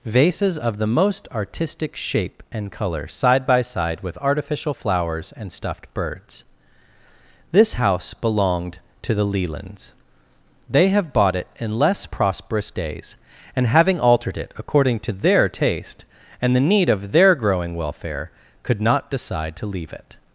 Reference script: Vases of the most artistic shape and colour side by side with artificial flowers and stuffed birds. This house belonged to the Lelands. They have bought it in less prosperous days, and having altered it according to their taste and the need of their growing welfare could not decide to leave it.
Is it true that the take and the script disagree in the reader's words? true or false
false